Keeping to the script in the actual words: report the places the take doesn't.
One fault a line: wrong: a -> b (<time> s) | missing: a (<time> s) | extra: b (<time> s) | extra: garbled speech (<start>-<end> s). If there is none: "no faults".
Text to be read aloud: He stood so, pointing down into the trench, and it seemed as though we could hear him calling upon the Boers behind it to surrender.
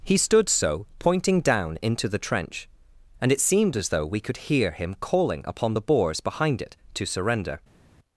no faults